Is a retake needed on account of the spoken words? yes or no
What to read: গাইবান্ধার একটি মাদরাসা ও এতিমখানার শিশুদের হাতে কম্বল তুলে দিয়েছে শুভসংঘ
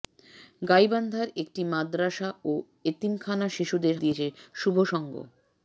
yes